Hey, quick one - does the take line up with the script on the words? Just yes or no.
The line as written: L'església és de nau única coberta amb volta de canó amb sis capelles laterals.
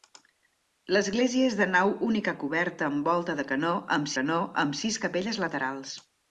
no